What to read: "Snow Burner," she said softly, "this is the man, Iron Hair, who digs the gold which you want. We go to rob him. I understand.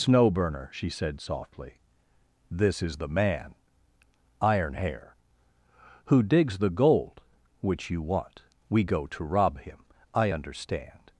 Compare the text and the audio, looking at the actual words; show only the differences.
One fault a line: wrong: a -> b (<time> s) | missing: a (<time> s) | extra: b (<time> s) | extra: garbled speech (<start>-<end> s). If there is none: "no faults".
no faults